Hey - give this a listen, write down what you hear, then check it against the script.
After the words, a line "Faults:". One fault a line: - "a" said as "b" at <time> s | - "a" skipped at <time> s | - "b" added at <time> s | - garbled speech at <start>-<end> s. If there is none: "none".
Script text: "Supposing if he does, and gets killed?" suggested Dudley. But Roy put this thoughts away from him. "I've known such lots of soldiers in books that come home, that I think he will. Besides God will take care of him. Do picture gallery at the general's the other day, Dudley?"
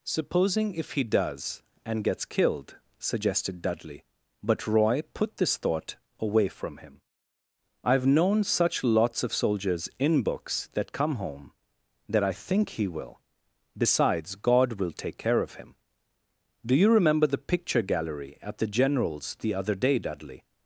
"Supposing if he does, and gets killed?" suggested Dudley. But Roy put this thought away from him. "I've known such lots of soldiers in books that come home, that I think he will. Besides God will take care of him. Do you remember the picture gallery at the general's the other day, Dudley?"
Faults:
- "thoughts" said as "thought" at 5.6 s
- "you remember the" added at 16.8 s